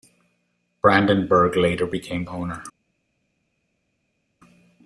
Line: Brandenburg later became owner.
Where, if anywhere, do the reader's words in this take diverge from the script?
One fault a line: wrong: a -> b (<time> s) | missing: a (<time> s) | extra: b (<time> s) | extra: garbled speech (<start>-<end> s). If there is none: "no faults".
no faults